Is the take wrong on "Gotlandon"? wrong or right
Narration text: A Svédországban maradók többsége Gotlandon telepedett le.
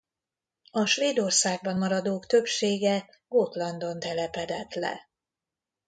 right